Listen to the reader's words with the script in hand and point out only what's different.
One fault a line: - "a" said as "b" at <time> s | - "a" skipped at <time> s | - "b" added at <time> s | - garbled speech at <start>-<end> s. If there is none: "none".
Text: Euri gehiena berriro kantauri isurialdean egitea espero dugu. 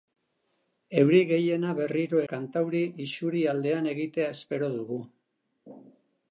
none